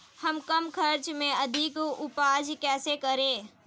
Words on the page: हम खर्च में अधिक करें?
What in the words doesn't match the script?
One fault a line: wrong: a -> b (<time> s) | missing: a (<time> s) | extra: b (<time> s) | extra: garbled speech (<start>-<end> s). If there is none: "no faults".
extra: कम (0.4 s)
extra: उपज कैसे (1.8 s)